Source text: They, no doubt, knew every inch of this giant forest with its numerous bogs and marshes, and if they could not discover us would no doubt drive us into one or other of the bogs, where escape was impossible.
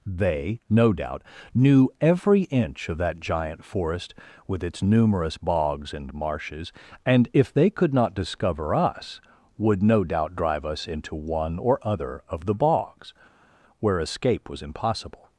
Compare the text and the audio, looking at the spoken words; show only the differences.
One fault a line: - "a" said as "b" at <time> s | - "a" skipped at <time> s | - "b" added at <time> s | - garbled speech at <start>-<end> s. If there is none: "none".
- "this" said as "that" at 3.0 s